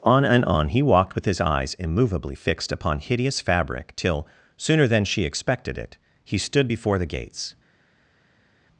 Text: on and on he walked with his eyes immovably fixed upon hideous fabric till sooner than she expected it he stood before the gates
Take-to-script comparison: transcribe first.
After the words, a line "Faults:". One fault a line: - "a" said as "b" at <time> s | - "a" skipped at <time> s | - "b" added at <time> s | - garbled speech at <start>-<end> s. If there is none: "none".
on and on he walked with his eyes immovably fixed upon hideous fabric till sooner than she expected it he stood before the gates
Faults:
none